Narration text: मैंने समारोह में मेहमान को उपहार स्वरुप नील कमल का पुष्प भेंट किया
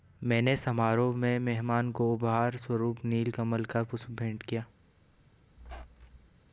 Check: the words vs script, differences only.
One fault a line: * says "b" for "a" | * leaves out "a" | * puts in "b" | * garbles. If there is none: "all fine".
all fine